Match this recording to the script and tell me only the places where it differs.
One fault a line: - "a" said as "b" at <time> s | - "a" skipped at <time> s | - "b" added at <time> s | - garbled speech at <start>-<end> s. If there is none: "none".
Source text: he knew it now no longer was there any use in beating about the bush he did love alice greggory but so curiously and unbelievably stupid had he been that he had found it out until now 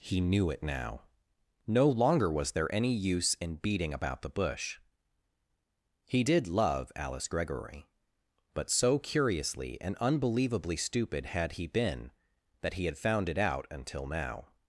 none